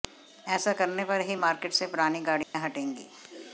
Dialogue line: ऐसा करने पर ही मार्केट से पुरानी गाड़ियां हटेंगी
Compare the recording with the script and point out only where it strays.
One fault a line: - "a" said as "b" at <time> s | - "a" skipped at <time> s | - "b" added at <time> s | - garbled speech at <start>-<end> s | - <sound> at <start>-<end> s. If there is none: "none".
- dropout at 2.4-2.5 s